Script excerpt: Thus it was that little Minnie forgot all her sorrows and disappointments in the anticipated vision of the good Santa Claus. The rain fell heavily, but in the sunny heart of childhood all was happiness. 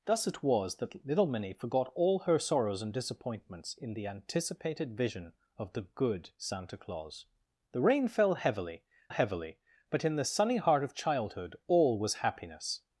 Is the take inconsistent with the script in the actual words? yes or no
yes